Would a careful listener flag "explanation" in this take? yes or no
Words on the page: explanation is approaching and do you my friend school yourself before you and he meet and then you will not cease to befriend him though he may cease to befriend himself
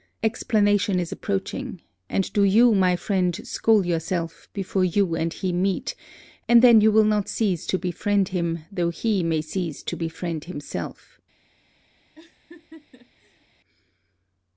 no